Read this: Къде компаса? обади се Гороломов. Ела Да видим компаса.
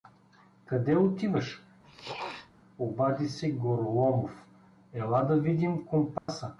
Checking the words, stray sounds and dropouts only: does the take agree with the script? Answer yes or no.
no